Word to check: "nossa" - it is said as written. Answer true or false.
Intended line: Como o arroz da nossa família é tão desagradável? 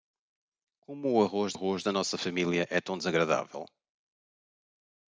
true